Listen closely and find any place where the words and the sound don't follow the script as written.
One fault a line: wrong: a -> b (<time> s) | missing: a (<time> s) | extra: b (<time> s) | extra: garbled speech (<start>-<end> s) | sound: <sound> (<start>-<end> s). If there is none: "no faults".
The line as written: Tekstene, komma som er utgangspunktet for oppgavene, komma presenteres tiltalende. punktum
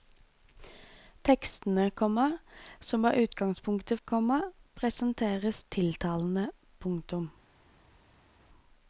missing: for oppgavene (4.0 s)